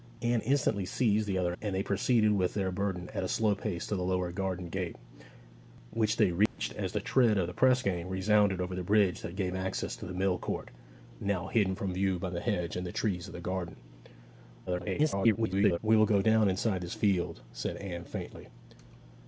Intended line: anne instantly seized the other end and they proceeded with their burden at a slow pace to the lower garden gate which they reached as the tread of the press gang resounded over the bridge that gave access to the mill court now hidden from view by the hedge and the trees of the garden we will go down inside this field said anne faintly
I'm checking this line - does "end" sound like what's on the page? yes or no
no